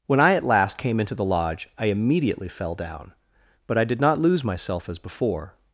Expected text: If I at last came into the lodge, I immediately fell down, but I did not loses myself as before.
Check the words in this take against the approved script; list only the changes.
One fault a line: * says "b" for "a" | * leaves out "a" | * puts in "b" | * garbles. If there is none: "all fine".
* says "When" for "If"
* says "lose" for "loses"